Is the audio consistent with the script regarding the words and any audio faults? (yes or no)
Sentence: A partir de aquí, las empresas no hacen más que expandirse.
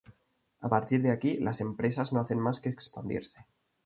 yes